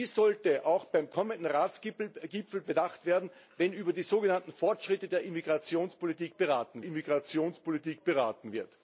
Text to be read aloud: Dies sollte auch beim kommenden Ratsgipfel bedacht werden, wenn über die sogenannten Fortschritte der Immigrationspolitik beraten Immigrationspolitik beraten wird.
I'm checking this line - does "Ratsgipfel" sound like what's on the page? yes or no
yes